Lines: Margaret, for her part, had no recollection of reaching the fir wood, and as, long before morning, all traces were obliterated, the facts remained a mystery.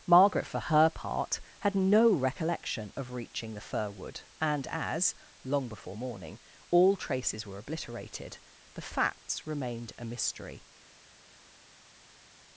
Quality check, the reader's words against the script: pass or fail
pass